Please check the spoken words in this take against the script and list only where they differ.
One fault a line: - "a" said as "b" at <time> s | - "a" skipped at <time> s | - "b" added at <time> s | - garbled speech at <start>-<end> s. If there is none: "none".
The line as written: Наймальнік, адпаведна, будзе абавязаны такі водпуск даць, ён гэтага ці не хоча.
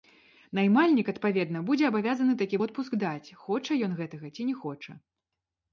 - "хоча" added at 3.4 s